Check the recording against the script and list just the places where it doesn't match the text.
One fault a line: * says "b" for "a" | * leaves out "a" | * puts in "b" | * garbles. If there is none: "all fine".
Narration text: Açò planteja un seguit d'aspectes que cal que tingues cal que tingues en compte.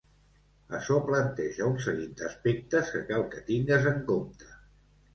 * leaves out "cal que tingues"